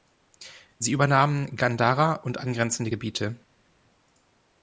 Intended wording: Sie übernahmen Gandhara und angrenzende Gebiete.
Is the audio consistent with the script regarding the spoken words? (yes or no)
yes